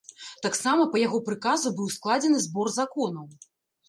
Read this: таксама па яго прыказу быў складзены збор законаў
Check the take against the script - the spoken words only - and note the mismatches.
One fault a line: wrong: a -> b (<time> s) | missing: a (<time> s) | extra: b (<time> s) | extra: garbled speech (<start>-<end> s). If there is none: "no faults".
no faults